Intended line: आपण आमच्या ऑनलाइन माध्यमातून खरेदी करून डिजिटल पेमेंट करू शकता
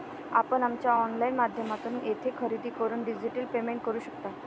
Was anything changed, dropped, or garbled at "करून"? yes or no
no